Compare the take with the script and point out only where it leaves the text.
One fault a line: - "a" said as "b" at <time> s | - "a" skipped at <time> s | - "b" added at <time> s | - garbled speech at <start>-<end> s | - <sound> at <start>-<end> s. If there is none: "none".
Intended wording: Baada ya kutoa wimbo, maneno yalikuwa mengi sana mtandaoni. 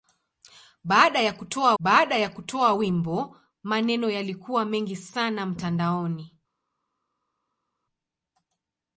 - "baada ya kutoa" added at 1.8 s